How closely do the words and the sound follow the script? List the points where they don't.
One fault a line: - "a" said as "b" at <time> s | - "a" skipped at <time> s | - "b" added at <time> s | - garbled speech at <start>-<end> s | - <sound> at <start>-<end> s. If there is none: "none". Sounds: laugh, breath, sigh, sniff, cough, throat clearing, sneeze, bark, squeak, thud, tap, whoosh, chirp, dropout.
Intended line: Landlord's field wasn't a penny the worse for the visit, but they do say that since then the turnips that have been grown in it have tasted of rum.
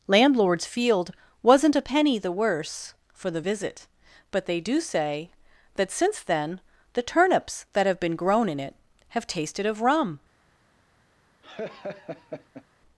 - laugh at 11.4-12.7 s